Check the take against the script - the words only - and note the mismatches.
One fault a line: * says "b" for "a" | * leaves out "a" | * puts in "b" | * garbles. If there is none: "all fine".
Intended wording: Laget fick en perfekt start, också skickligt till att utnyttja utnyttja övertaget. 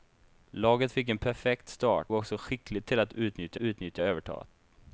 all fine